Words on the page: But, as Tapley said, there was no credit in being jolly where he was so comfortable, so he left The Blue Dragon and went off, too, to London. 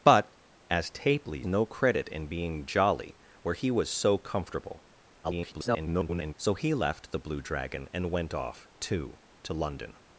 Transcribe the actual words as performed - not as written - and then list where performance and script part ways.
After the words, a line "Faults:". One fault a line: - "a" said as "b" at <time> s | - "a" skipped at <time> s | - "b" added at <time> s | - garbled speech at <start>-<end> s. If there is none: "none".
But, as Tapley no credit in being jolly where he was so comfortable, [garbled] so he left The Blue Dragon and went off, too, to London.
Faults:
- "said there was" skipped at 1.4 s
- garbled speech at 5.2-6.3 s